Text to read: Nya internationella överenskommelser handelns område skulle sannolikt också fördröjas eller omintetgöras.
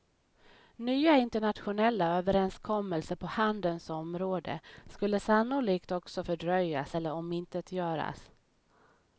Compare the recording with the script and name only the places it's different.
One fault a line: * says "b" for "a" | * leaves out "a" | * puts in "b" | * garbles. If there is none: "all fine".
* puts in "på"